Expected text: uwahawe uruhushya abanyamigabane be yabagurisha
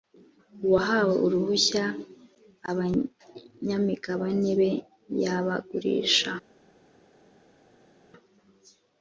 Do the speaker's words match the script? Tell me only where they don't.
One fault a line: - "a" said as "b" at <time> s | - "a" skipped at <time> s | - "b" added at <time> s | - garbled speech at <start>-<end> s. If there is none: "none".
none